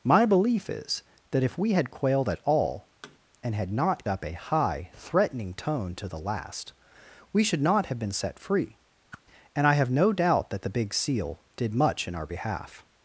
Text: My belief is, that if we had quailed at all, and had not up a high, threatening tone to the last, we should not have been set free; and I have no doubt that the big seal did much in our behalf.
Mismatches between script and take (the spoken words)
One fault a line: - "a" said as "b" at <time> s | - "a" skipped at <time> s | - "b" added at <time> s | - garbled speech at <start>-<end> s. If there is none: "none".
none